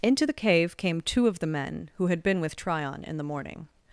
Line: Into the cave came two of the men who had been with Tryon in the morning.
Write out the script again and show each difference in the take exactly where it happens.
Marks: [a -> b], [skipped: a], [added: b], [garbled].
Into the cave came two of the men who had been with Tryon in the morning.